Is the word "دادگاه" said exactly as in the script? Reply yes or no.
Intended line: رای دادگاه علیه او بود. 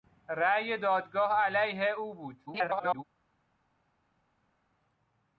yes